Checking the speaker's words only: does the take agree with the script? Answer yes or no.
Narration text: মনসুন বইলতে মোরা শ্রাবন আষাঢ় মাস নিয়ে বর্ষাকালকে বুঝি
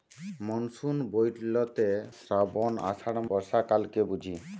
no